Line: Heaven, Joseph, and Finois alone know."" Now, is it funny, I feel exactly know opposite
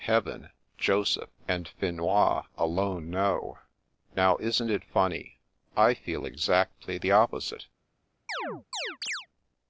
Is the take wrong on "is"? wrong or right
wrong